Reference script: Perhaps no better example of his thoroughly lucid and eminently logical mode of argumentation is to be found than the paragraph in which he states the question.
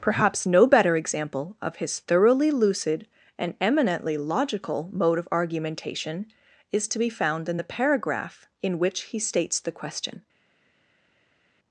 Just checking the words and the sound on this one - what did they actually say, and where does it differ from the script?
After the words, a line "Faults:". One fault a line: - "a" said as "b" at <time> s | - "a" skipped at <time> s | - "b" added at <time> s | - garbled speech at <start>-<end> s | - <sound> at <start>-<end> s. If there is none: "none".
Perhaps no better example of his thoroughly lucid and eminently logical mode of argumentation is to be found in the paragraph in which he states the question.
Faults:
- "than" said as "in" at 7.5 s